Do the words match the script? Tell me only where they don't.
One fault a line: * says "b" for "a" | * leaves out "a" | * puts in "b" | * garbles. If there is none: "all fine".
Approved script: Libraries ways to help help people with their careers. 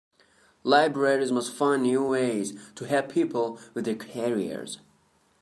* puts in "must find new"
* leaves out "help"